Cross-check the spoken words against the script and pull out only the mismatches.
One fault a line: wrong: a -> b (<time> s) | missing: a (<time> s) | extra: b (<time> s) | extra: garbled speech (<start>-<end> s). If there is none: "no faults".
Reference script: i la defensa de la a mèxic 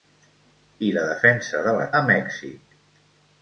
no faults